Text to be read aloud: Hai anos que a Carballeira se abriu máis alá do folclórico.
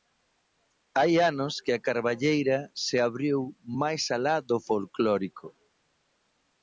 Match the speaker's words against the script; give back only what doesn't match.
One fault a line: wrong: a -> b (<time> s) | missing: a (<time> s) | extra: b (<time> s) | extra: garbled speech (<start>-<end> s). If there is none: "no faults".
no faults